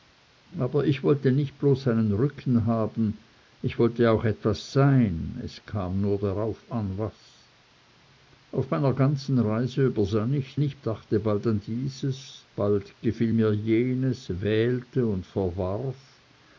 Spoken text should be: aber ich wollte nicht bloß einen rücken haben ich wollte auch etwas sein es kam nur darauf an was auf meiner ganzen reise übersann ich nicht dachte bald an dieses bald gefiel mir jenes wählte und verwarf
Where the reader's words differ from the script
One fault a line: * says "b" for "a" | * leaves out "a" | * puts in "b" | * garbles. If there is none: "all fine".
all fine